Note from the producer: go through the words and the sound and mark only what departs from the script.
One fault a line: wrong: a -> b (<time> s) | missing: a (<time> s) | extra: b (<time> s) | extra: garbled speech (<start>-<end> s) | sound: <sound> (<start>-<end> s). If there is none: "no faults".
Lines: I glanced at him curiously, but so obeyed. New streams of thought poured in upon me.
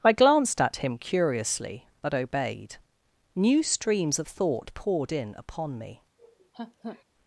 missing: so (2.1 s)
sound: laugh (6.2-7.0 s)